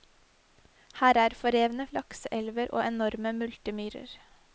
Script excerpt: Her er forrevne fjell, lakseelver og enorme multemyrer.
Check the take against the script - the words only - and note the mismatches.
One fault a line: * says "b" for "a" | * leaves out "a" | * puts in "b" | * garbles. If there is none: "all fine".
* leaves out "fjell"